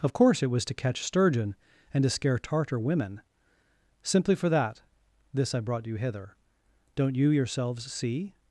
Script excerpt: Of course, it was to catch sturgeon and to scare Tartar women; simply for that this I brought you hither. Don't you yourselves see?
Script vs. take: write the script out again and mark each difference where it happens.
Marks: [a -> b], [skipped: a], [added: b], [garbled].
Of course, it was to catch sturgeon and to scare Tartar women; simply for that this I brought you hither. Don't you yourselves see?